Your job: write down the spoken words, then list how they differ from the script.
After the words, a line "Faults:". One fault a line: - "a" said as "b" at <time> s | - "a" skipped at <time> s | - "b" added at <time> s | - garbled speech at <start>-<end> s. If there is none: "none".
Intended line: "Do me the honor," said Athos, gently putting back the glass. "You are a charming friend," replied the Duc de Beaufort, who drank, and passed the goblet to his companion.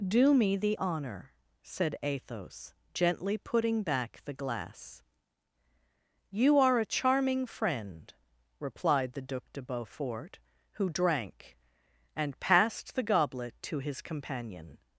"Do me the honor," said Athos, gently putting back the glass. "You are a charming friend," replied the Duc de Beaufort, who drank, and passed the goblet to his companion.
Faults:
none